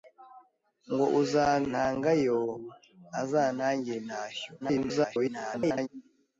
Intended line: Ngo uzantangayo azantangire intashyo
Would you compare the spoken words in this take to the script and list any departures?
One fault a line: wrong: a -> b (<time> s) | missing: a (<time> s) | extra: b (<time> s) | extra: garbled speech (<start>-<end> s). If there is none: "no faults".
extra: garbled speech (4.6-5.9 s)